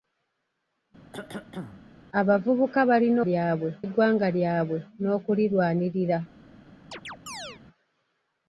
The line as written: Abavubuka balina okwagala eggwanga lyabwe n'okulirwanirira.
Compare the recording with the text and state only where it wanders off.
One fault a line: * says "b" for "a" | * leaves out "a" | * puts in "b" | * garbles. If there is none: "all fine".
* says "lyabwe" for "okwagala"